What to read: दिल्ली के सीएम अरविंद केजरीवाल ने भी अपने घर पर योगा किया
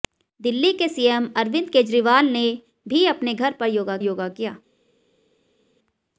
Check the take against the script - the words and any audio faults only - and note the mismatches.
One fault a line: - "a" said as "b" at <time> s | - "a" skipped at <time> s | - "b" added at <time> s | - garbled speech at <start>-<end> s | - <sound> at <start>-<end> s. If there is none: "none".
- "योगा" added at 4.0 s